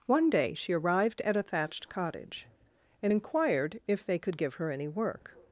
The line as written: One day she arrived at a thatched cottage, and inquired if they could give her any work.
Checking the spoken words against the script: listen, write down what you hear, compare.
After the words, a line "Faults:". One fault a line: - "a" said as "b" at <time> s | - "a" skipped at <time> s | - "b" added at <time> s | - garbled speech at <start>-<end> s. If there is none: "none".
One day she arrived at a thatched cottage, and inquired if they could give her any work.
Faults:
none